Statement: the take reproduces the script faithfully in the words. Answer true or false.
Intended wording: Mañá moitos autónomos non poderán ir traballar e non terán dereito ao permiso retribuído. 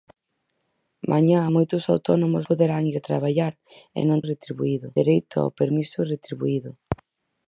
false